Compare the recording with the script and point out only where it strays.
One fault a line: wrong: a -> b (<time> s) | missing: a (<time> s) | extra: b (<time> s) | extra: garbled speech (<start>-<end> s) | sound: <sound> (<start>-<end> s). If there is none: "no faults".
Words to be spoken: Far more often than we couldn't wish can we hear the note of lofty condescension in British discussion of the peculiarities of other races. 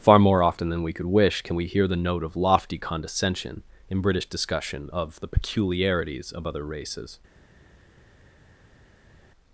wrong: couldn't -> could (0.9 s)